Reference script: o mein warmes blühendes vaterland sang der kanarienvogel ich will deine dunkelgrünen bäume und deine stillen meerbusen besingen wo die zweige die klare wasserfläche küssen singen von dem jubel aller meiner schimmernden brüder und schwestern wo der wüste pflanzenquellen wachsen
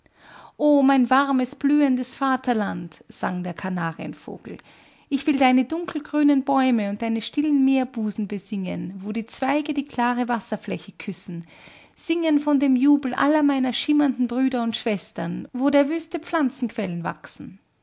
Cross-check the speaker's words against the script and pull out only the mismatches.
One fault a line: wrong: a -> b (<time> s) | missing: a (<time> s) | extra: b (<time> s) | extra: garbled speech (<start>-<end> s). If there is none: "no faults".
no faults